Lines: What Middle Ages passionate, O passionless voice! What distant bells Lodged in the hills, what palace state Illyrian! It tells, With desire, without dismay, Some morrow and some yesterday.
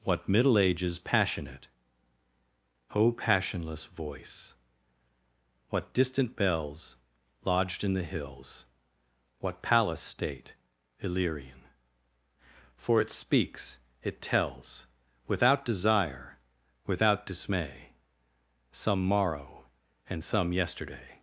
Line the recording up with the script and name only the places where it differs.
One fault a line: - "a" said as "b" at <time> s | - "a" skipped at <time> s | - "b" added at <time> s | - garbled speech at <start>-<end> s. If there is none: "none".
- "For" added at 12.8 s
- "speaks it" added at 13.1 s
- "With" said as "Without" at 15.3 s